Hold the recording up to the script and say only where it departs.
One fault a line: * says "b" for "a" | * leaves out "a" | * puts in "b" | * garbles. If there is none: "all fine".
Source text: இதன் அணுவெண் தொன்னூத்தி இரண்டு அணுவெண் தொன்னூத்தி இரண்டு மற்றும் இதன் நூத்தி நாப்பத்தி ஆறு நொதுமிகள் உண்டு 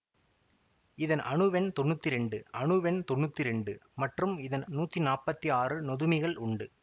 all fine